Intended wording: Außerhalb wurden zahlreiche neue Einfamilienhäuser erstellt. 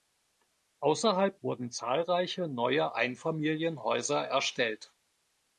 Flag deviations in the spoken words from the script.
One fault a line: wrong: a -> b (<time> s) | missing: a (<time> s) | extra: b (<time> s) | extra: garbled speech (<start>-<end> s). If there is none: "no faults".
no faults